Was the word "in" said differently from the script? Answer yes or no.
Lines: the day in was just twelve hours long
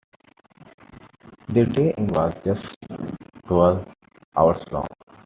no